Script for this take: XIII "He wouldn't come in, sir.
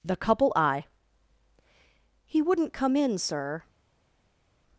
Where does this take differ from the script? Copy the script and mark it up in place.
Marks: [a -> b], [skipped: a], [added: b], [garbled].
[XIII -> The couple I] "He wouldn't come in, sir.